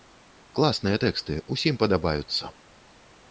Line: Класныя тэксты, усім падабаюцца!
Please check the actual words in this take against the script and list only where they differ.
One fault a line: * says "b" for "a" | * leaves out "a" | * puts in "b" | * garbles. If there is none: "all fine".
all fine